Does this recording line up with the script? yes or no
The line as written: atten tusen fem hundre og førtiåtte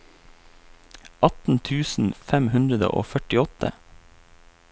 yes